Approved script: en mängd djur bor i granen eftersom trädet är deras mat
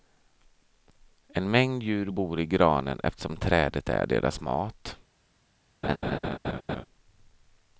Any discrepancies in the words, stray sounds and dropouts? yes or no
yes